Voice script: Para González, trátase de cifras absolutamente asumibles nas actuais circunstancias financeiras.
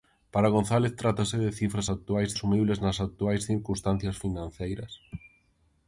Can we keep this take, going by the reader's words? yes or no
no